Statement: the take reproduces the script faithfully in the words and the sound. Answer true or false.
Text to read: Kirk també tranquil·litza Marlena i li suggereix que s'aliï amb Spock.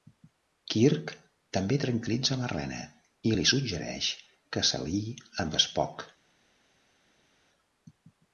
true